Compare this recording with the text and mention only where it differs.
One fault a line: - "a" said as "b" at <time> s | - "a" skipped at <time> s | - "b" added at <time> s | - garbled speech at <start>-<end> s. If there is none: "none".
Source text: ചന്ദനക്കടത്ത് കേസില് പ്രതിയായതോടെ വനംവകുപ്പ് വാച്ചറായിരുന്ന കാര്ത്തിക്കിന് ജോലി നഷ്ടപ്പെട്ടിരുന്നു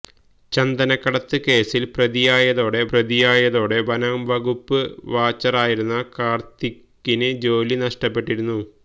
- "പ്രതിയായതോടെ" added at 2.9 s